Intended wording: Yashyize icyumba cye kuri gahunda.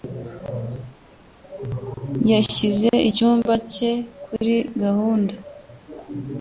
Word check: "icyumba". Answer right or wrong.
right